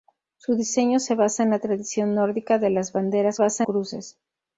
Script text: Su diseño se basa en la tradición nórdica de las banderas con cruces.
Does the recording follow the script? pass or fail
fail